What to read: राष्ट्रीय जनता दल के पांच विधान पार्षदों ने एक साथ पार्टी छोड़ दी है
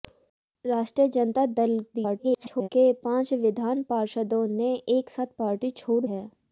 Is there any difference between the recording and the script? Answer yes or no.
yes